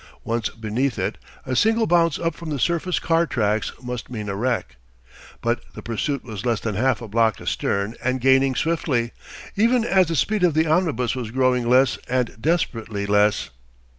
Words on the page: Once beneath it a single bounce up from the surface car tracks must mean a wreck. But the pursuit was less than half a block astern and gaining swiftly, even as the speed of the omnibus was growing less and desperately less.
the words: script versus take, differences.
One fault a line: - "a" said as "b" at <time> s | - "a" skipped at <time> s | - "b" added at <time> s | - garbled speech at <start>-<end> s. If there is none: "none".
none